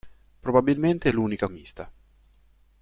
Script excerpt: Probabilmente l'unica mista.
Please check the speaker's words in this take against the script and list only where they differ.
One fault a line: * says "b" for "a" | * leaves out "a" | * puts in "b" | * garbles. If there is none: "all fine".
all fine